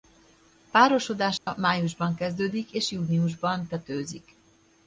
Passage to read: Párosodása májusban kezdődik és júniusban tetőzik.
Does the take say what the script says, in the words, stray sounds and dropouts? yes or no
no